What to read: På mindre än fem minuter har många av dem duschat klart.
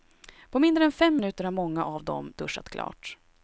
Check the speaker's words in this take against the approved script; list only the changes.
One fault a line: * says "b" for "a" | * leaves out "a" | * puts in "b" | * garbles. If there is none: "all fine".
all fine